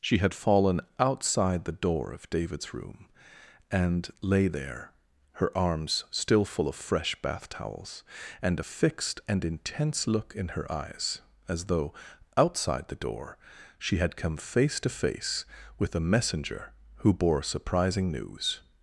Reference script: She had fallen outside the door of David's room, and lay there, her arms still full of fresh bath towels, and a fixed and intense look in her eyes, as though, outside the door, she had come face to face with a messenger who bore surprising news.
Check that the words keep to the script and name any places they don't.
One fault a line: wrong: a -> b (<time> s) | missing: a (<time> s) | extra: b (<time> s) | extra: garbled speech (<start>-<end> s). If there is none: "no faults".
no faults